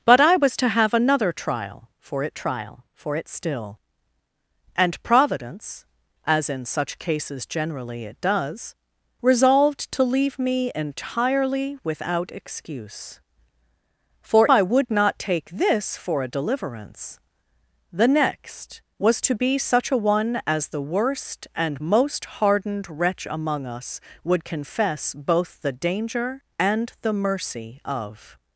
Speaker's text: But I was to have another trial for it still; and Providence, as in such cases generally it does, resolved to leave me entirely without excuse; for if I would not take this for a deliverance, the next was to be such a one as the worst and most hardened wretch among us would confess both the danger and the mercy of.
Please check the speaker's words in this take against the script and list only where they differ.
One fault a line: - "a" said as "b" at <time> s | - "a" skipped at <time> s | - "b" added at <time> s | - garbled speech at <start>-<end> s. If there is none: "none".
- "trial for it" added at 2.3 s
- "if" skipped at 14.5 s